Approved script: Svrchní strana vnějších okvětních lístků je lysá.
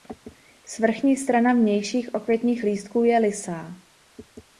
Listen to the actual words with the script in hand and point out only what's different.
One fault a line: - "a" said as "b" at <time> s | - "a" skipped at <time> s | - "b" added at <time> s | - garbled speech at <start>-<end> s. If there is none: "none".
none